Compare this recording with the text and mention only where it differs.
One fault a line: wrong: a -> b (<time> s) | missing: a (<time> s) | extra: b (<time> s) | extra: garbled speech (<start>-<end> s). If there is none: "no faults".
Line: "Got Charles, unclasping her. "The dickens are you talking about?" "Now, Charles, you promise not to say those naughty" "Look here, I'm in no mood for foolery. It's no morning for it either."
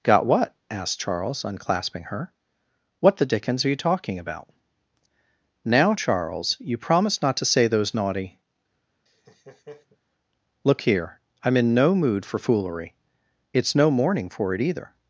extra: what asked (0.2 s)
extra: What (3.0 s)
wrong: promise -> promised (6.8 s)